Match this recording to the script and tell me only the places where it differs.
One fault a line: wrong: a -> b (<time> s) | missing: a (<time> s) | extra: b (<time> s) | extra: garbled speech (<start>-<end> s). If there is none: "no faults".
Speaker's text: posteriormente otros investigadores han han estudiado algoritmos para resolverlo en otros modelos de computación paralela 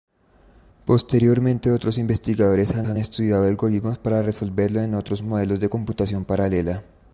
no faults